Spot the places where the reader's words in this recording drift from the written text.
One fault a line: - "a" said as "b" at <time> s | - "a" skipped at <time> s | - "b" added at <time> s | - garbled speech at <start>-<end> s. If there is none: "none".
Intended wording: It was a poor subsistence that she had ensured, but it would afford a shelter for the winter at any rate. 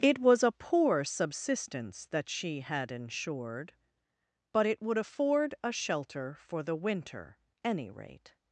- "at" skipped at 7.4 s